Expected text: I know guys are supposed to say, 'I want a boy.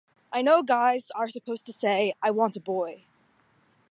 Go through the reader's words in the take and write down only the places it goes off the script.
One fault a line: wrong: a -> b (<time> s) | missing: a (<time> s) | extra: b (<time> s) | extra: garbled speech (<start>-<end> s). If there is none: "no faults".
no faults